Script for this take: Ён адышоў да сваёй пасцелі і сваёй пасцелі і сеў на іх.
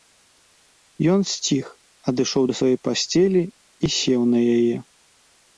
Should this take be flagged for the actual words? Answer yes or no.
yes